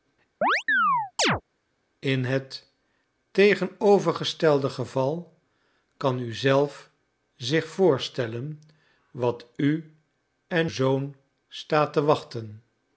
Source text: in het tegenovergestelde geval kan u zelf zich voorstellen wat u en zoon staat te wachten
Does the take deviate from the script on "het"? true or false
false